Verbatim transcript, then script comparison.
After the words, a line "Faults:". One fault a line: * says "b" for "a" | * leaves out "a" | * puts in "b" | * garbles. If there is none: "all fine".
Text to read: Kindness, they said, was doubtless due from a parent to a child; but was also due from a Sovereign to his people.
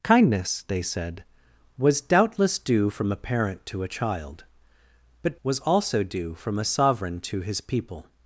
Kindness, they said, was doubtless due from a parent to a child; but was also due from a Sovereign to his people.
Faults:
all fine